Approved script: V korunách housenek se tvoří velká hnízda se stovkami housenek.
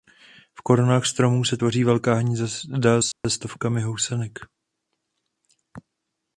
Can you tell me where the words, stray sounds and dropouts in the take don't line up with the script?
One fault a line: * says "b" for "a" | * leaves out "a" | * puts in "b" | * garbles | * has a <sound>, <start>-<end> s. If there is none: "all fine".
* says "stromů" for "housenek"
* has a dropout, 3.1-3.2 s